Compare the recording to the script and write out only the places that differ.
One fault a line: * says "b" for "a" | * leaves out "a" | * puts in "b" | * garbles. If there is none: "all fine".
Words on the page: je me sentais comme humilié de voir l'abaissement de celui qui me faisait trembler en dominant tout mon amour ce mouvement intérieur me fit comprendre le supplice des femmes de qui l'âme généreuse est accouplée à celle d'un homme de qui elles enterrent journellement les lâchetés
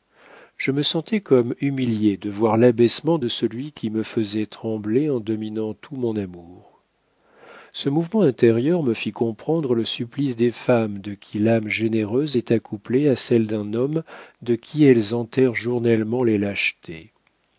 all fine